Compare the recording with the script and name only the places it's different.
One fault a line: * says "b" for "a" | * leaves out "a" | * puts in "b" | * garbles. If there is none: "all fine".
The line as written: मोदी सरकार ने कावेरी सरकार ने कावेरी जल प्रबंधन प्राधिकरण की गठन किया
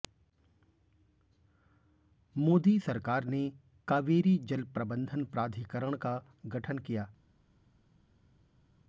* leaves out "सरकार ने कावेरी"
* says "का" for "की"